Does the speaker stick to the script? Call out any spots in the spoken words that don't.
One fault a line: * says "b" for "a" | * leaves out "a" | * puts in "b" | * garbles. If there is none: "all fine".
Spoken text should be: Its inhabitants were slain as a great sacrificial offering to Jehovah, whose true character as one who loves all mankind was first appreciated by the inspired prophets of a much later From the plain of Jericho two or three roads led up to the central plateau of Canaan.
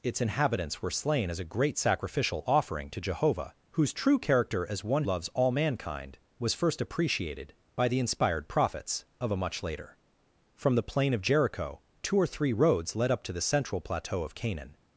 * leaves out "who"